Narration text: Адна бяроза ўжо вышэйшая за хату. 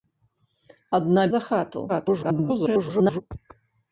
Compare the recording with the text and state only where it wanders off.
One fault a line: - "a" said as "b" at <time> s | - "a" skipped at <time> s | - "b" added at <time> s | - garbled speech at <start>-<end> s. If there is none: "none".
- "бяроза ўжо вышэйшая" skipped at 1.2 s
- garbled speech at 1.9-3.2 s